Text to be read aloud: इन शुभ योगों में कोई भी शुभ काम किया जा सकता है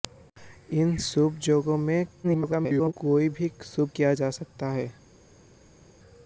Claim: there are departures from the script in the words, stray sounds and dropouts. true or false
true